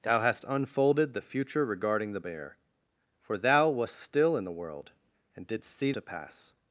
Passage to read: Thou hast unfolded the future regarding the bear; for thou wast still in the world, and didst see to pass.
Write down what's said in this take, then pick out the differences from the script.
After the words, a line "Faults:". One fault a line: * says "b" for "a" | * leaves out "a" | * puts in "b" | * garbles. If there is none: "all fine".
Thou hast unfolded the future regarding the bear; for thou wast still in the world, and didst see to pass.
Faults:
all fine